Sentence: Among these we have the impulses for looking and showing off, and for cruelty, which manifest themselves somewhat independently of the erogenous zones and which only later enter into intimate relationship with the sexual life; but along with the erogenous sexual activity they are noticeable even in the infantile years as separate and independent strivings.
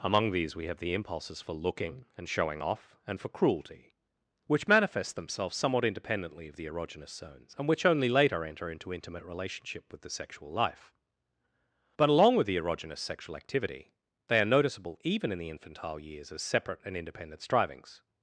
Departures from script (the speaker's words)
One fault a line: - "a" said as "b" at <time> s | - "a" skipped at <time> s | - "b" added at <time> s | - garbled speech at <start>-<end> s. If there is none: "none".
none